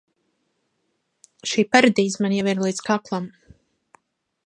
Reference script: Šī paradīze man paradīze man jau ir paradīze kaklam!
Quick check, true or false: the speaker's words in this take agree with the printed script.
false